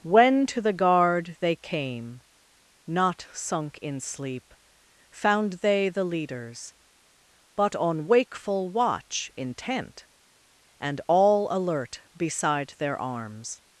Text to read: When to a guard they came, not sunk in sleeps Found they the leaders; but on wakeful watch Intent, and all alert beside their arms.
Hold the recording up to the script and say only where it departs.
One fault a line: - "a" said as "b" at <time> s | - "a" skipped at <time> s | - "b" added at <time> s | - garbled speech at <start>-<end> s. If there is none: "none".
- "a" said as "the" at 0.6 s
- "sleeps" said as "sleep" at 4.0 s